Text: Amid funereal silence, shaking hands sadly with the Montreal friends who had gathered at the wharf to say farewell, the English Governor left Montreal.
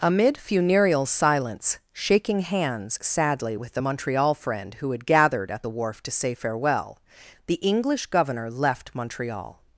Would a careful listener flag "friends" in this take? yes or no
yes